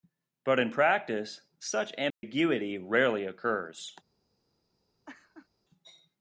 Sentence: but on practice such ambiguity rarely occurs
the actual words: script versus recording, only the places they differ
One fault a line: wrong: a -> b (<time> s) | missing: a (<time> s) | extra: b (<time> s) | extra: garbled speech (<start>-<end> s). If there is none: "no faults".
wrong: on -> in (0.6 s)